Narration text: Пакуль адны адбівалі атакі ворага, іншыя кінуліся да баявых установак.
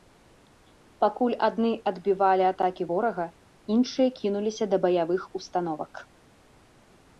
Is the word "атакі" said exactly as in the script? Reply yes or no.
yes